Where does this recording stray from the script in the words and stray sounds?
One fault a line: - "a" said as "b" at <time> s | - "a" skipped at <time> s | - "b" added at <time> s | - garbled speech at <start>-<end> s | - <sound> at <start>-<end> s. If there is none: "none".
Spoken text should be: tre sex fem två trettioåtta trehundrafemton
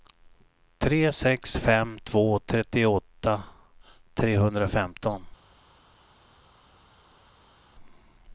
none